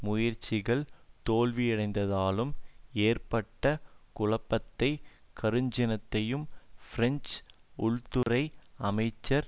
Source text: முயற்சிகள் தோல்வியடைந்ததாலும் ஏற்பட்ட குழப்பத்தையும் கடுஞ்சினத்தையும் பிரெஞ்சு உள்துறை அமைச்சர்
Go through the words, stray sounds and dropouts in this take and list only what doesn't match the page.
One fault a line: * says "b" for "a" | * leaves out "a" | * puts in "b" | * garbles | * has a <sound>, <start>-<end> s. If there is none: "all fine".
* has a dropout, 8.2-8.3 s